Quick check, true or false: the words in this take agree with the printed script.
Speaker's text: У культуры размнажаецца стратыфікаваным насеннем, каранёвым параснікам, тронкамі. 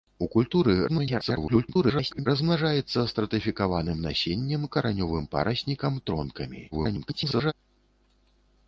false